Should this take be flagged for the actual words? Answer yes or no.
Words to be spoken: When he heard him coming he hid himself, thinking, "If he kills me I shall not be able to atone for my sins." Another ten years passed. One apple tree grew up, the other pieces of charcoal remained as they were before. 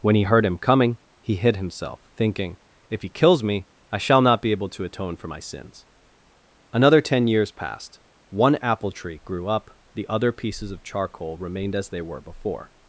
no